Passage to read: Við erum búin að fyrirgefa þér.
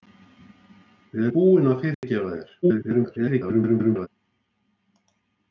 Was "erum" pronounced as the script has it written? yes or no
no